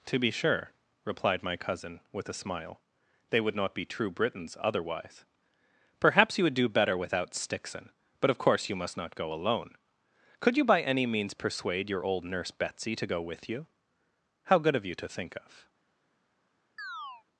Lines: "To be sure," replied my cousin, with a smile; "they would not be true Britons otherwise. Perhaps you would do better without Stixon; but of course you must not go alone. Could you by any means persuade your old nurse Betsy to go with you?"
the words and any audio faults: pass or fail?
fail